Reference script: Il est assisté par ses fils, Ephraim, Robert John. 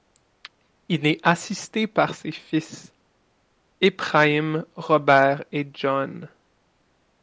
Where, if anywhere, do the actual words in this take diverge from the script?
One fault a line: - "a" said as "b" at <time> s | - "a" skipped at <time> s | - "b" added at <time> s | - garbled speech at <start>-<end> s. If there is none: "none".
- "et" added at 5.5 s